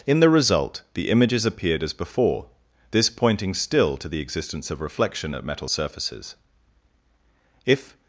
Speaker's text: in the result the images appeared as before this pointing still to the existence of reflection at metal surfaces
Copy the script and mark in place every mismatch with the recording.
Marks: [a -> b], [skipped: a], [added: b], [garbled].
in the result the images appeared as before this pointing still to the existence of reflection at metal surfaces [added: if]